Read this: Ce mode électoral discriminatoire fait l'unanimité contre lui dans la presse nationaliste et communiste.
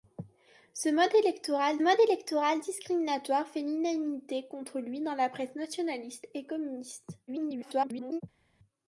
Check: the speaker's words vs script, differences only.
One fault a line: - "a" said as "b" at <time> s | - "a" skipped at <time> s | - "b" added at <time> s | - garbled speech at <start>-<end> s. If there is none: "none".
- "mode électoral" added at 1.8 s
- garbled speech at 7.3-8.2 s